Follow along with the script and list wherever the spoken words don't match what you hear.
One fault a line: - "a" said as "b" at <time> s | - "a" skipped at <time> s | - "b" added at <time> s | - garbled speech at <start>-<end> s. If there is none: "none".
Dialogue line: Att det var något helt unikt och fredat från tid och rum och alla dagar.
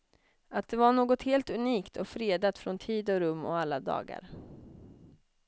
none